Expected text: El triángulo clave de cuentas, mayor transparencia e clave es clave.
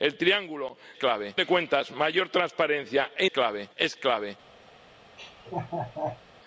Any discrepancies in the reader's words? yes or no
no